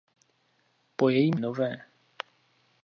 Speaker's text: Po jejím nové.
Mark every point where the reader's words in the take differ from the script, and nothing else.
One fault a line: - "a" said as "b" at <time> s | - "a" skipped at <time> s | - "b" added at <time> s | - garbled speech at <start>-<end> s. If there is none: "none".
none